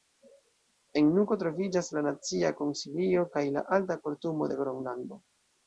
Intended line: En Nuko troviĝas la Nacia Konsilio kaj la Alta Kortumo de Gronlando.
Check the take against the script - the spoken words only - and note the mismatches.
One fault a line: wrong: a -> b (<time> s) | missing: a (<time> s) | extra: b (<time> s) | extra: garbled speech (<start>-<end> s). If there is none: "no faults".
no faults